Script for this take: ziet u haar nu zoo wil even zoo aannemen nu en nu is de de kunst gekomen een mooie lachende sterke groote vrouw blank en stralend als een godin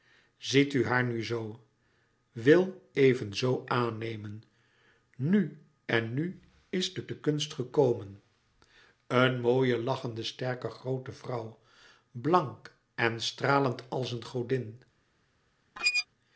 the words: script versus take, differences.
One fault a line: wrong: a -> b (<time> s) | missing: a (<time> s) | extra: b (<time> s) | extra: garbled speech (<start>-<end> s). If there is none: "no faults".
no faults